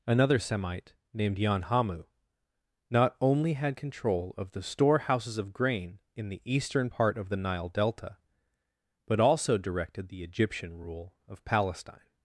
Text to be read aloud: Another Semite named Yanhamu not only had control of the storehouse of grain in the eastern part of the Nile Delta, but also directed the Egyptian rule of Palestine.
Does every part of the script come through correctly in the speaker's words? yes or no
no